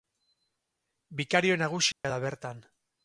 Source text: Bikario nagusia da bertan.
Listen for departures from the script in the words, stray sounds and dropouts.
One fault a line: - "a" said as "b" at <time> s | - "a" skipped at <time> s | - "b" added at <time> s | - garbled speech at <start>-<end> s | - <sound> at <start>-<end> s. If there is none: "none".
- dropout at 1.9-2.0 s